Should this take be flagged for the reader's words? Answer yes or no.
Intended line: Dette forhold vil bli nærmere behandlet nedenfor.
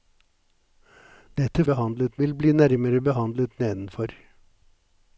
yes